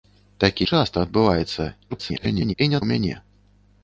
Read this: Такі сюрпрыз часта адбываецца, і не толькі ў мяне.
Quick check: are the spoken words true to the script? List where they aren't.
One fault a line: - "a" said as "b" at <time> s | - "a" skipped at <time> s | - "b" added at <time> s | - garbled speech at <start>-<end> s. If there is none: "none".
- "сюрпрыз" skipped at 0.7 s
- garbled speech at 1.9-2.5 s
- "толькі" skipped at 2.8 s